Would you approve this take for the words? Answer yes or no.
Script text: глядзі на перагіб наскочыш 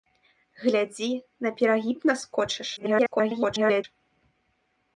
no